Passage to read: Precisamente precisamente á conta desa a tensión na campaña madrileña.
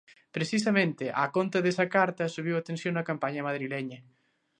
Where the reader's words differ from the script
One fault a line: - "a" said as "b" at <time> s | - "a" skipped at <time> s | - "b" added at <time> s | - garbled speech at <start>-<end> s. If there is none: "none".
- "precisamente" skipped at 1.1 s
- "carta subiu" added at 1.9 s